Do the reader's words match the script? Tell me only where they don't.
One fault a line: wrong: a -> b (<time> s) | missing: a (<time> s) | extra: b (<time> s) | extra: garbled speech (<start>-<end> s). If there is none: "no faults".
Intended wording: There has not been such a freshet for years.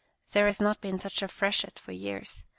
no faults